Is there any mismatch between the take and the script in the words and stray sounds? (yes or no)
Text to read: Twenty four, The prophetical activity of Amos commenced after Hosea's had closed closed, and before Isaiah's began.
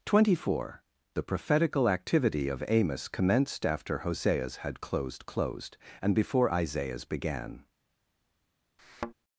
yes